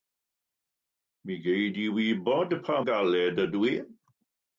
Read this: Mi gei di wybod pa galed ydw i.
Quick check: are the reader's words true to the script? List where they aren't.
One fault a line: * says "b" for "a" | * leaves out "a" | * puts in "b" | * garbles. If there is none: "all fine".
all fine